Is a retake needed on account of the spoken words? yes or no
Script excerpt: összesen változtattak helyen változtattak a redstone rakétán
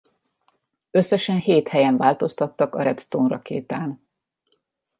yes